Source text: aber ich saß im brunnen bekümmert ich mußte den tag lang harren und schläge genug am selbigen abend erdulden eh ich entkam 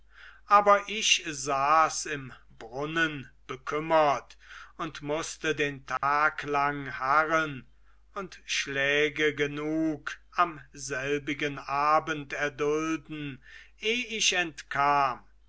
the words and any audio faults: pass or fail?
fail